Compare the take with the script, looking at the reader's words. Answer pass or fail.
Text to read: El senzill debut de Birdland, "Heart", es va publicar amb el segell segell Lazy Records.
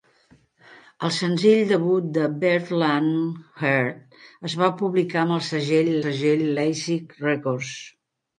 pass